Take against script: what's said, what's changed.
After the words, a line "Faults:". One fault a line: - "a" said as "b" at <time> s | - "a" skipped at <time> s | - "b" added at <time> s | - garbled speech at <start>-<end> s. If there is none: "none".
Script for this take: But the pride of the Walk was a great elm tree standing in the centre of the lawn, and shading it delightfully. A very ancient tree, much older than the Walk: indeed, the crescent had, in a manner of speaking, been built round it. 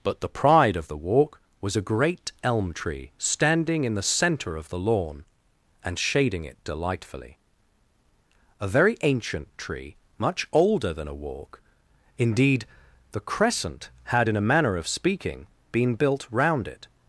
But the pride of the Walk was a great elm tree standing in the centre of the lawn, and shading it delightfully. A very ancient tree, much older than a Walk: indeed, the crescent had, in a manner of speaking, been built round it.
Faults:
- "the" said as "a" at 11.1 s